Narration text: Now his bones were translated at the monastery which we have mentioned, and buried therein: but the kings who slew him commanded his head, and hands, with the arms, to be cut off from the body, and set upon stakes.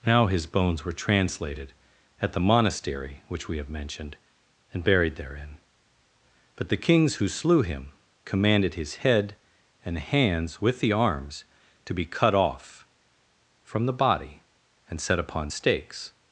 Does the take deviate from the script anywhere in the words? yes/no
no